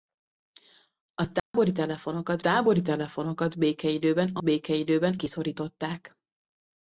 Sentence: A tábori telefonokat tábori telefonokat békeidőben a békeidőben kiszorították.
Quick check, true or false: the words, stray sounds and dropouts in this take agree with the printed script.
false